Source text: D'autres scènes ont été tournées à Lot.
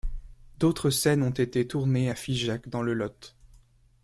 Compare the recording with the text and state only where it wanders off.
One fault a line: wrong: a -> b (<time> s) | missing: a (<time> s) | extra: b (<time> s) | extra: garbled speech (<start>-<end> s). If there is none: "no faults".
extra: Figeac dans le (2.1 s)